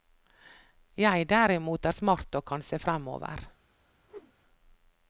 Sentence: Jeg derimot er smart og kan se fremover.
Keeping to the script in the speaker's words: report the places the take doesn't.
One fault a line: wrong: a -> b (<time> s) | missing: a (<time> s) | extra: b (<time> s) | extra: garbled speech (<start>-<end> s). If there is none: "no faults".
no faults